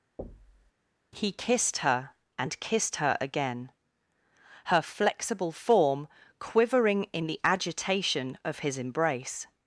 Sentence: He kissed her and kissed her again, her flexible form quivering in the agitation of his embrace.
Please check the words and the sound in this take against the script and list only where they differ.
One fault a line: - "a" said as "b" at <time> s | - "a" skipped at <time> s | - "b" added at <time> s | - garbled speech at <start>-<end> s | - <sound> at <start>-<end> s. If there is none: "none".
- thud at 0.2-0.7 s